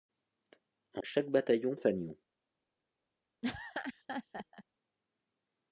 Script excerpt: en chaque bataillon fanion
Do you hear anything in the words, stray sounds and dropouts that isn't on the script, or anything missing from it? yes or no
yes